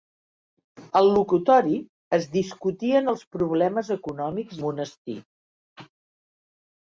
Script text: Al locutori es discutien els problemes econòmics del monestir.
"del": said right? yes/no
no